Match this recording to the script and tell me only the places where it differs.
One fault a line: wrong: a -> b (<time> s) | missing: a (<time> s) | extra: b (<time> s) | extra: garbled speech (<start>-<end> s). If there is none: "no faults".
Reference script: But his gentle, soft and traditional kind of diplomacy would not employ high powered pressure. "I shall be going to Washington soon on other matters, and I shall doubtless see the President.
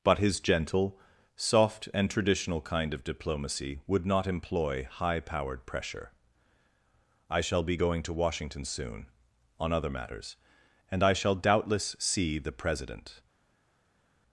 no faults